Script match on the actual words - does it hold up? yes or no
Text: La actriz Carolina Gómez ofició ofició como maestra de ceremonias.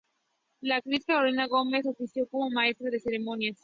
no